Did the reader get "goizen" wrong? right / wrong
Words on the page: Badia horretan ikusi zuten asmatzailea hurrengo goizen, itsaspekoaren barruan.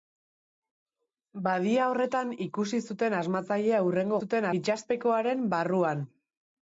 wrong